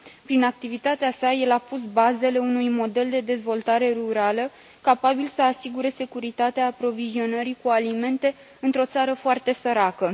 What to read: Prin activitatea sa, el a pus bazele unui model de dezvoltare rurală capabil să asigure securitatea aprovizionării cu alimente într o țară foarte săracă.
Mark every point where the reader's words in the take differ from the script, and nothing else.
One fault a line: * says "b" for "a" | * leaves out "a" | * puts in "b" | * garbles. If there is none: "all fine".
all fine